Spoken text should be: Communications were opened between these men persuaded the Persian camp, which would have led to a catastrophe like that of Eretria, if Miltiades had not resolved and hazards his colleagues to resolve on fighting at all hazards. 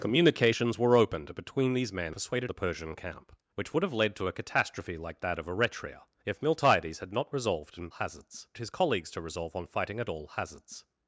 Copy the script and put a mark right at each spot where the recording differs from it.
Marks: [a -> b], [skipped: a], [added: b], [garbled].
Communications were opened between these men persuaded the Persian camp, which would have led to a catastrophe like that of Eretria, if Miltiades had not resolved and hazards his colleagues to resolve on fighting at all hazards.